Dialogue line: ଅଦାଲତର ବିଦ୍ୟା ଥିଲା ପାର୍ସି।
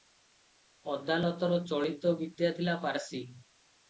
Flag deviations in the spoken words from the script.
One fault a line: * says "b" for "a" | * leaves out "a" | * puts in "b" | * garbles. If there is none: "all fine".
* puts in "ଚଳିତ"